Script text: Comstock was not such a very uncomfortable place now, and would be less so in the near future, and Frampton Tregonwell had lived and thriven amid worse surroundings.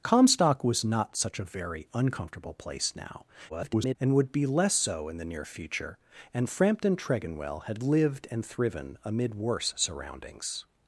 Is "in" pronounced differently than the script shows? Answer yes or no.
no